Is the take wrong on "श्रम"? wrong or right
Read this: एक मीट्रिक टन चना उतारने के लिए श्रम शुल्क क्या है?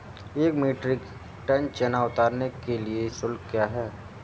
wrong